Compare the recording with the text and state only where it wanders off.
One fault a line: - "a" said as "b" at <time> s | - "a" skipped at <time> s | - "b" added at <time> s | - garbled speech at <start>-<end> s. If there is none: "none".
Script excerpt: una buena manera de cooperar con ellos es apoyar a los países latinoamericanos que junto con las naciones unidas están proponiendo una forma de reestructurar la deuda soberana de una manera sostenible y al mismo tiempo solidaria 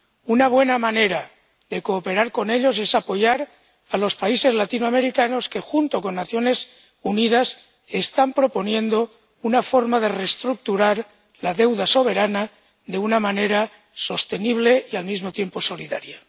none